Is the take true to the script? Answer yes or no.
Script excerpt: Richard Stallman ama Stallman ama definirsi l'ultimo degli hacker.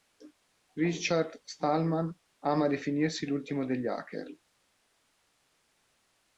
no